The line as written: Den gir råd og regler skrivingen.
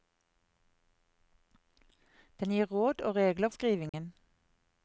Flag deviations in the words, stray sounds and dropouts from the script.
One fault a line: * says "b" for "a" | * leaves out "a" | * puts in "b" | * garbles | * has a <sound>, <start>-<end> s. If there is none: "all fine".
* has a dropout, 3.9-3.9 s